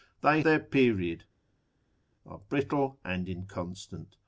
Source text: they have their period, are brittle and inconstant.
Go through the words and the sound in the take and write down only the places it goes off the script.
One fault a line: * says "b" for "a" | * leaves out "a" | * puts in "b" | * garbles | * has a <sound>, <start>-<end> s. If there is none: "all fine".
* leaves out "have"